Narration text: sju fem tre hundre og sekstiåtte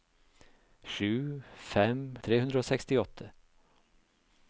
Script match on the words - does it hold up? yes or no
yes